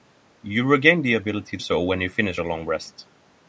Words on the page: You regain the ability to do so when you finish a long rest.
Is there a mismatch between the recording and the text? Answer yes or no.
yes